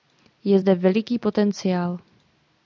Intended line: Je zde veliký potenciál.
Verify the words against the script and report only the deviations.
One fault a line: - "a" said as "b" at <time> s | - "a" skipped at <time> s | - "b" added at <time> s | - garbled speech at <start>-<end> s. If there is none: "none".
none